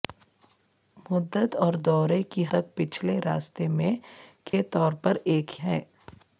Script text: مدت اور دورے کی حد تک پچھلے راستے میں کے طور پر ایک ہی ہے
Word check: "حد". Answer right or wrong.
wrong